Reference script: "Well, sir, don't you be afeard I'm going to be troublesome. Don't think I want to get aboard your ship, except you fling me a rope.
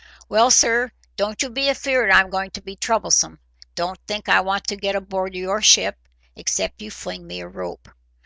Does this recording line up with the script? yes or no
yes